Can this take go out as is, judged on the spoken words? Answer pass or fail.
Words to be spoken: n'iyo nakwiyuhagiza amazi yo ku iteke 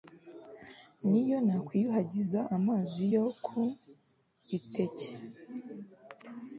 pass